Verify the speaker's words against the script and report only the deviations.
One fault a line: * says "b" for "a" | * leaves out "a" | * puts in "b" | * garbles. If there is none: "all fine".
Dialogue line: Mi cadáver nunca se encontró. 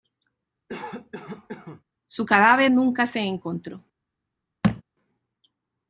* says "Su" for "Mi"